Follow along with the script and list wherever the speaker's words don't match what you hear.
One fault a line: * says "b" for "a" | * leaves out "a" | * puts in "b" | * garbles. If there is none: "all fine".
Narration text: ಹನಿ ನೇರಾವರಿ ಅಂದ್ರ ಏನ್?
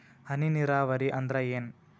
all fine